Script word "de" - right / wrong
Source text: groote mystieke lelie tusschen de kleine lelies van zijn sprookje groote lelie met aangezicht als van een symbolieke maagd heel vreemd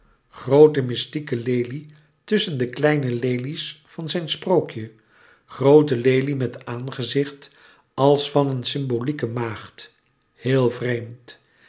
right